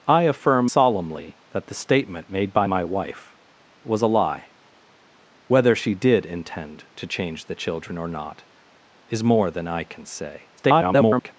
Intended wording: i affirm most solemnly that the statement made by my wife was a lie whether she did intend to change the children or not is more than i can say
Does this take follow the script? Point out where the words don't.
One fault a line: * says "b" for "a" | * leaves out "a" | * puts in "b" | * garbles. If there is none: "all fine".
* leaves out "most"
* garbles